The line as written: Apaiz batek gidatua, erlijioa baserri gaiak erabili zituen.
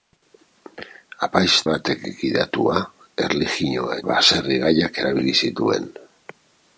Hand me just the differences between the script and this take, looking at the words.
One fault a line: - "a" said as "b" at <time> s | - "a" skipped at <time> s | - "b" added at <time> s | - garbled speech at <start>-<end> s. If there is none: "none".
none